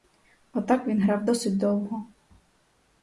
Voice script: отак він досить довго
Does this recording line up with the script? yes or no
no